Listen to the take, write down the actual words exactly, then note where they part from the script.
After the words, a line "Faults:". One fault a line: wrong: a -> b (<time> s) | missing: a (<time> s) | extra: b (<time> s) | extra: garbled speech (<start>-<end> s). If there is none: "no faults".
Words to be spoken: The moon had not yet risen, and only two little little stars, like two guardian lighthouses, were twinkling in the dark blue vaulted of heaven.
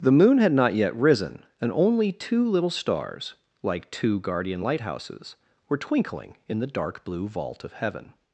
The moon had not yet risen, and only two little stars, like two guardian lighthouses, were twinkling in the dark blue vault of heaven.
Faults:
missing: little (2.7 s)
wrong: vaulted -> vault (7.3 s)